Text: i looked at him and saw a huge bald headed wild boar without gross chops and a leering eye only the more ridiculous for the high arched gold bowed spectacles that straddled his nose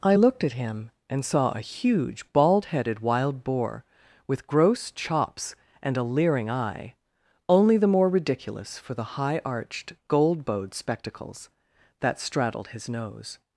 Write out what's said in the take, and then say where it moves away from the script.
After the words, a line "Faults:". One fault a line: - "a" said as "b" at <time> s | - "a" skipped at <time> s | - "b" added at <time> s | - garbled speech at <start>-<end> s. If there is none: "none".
i looked at him and saw a huge bald headed wild boar with gross chops and a leering eye only the more ridiculous for the high arched gold bowed spectacles that straddled his nose
Faults:
- "without" said as "with" at 4.3 s